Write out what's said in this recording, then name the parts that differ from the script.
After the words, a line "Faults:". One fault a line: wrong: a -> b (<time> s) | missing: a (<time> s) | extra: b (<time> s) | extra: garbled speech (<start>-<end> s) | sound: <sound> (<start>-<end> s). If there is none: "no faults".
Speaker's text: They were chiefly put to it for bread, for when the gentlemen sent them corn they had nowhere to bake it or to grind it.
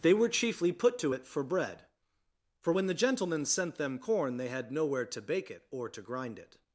They were chiefly put to it for bread, for when the gentlemen sent them corn they had nowhere to bake it or to grind it.
Faults:
no faults